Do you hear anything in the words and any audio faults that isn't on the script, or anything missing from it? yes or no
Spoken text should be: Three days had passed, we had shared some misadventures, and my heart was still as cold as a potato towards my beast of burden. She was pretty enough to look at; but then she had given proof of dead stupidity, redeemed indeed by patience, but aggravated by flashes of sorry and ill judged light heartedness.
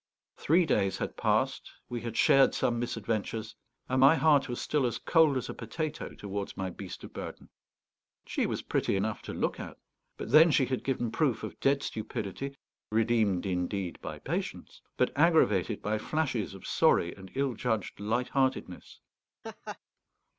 yes